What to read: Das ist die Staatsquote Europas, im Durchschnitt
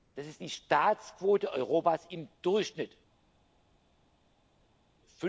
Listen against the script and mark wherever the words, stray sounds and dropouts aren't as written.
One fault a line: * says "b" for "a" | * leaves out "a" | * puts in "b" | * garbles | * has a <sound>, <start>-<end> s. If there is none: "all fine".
all fine